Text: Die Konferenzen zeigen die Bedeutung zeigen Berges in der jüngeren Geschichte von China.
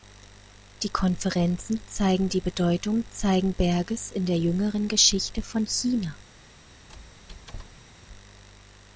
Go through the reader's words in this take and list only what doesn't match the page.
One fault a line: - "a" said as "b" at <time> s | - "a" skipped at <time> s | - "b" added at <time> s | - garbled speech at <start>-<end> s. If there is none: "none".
none